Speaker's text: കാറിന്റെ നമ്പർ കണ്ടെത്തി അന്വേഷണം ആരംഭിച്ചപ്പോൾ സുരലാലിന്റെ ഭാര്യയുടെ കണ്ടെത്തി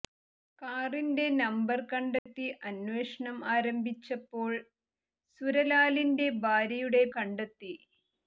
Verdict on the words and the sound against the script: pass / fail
fail